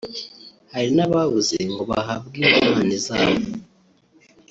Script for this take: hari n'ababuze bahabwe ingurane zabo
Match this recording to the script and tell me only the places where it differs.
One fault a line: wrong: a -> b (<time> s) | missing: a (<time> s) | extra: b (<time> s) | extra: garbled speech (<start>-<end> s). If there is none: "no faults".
extra: ngo (1.7 s)